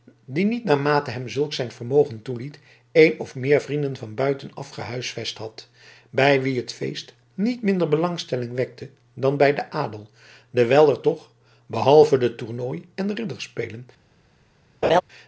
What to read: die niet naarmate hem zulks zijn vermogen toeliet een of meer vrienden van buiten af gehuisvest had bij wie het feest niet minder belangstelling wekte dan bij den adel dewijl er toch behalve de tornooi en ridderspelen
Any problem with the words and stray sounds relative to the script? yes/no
yes